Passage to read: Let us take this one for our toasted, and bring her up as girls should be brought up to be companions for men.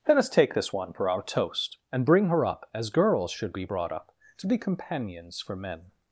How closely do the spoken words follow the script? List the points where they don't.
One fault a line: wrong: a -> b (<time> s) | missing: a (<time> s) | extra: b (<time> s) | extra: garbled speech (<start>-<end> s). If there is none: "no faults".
wrong: toasted -> toast (1.2 s)